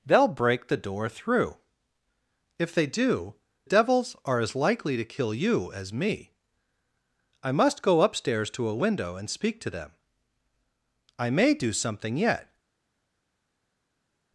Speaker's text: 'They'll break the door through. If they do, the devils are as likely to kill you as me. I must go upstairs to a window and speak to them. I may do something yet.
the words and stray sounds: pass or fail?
fail